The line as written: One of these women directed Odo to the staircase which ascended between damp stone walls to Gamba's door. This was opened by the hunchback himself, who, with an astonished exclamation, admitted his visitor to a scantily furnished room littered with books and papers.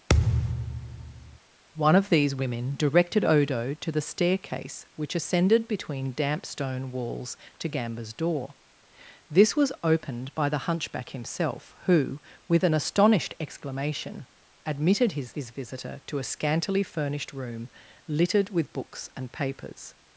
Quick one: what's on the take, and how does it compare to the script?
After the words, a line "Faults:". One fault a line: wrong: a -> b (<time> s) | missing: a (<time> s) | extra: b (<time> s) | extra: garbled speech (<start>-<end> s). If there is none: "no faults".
One of these women directed Odo to the staircase which ascended between damp stone walls to Gamba's door. This was opened by the hunchback himself, who, with an astonished exclamation, admitted his his visitor to a scantily furnished room littered with books and papers.
Faults:
extra: his (15.3 s)